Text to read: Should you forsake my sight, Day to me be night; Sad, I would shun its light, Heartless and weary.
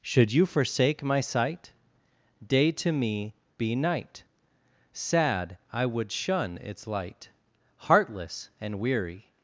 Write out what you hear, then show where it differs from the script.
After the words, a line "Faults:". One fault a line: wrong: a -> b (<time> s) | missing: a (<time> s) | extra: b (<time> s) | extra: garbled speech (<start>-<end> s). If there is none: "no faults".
Should you forsake my sight, Day to me be night; Sad, I would shun its light, Heartless and weary.
Faults:
no faults